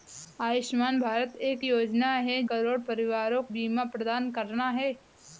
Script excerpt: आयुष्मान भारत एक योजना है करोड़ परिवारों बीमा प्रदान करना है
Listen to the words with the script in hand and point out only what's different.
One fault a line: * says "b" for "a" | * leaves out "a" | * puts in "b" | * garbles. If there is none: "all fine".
all fine